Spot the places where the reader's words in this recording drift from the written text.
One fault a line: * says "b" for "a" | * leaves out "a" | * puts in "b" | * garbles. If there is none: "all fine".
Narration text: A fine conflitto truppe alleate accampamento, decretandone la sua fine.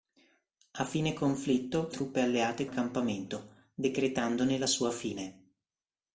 all fine